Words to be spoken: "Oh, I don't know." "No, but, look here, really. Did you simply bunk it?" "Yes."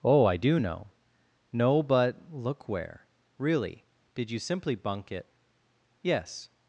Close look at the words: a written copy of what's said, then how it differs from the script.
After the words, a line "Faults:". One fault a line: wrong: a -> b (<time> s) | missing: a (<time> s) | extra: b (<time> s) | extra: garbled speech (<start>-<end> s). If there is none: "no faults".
"Oh, I do know." "No, but, look where, really. Did you simply bunk it?" "Yes."
Faults:
wrong: don't -> do (0.4 s)
wrong: here -> where (2.7 s)